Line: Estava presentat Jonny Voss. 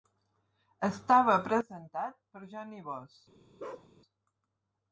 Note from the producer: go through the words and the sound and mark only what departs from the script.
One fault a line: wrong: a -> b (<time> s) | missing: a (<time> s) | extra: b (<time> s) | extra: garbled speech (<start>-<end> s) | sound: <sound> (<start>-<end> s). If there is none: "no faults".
extra: per (2.3 s)
sound: bark (3.6-3.9 s)